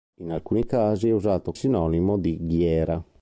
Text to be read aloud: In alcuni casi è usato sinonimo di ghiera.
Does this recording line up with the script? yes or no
yes